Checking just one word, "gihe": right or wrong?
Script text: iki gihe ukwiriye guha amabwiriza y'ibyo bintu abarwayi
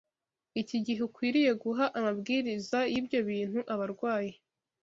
right